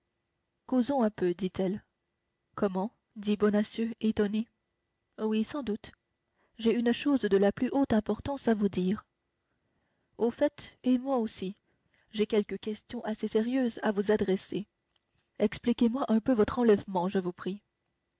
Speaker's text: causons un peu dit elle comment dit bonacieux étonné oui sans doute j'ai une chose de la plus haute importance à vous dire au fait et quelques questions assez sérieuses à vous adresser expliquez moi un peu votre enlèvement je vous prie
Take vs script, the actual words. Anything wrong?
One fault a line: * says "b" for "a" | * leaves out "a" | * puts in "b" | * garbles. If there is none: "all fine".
* puts in "moi aussi j'ai"